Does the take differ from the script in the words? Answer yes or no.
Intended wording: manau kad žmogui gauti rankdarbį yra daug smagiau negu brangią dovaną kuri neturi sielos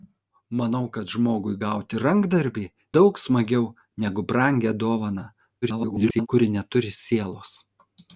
yes